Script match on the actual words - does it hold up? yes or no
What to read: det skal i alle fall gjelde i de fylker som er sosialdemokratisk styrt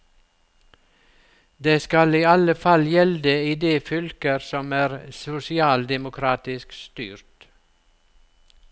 yes